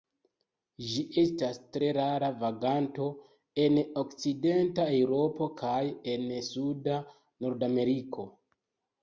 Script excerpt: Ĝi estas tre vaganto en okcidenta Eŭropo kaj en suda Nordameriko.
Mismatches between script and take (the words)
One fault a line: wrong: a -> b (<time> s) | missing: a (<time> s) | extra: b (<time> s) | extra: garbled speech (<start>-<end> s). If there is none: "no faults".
extra: rara (2.0 s)